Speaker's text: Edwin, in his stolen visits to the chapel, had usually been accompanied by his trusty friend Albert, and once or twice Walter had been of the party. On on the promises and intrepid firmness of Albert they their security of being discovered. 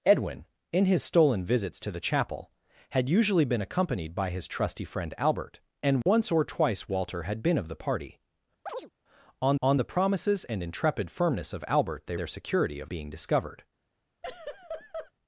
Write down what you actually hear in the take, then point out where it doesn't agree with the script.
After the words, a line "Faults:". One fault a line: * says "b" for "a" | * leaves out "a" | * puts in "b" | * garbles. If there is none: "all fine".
Edwin, in his stolen visits to the chapel, had usually been accompanied by his trusty friend Albert, and once or twice Walter had been of the party. On on the promises and intrepid firmness of Albert they their security of being discovered.
Faults:
all fine